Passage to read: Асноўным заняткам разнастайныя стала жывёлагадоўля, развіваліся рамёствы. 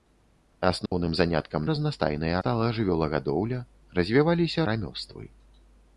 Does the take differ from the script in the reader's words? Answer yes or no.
no